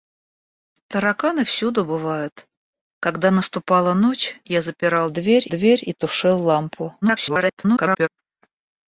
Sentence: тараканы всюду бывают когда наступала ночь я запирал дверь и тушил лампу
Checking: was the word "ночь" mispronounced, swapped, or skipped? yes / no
no